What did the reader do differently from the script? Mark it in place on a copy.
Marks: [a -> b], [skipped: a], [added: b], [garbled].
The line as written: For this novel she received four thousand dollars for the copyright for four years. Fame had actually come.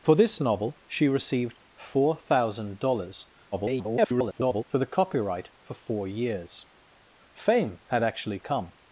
For this novel she received four thousand dollars [garbled] for the copyright for four years. Fame had actually come.